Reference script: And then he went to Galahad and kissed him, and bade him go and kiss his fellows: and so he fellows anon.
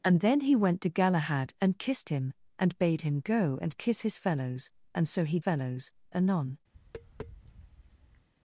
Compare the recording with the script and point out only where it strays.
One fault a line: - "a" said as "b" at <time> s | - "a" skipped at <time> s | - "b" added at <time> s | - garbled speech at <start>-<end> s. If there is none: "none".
none